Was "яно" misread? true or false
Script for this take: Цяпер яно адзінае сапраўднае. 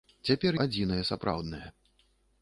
true